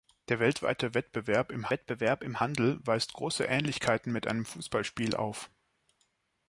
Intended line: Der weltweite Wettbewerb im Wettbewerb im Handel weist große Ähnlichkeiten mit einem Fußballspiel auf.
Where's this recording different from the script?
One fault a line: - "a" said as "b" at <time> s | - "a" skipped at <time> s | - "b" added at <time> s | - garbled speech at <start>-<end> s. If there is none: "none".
none